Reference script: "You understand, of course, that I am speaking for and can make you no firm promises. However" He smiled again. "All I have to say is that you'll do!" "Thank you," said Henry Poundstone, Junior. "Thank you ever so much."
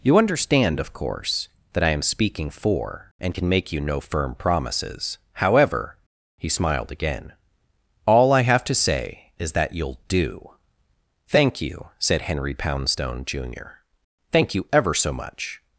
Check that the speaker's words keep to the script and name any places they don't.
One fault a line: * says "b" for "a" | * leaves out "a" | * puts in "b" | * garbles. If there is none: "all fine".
all fine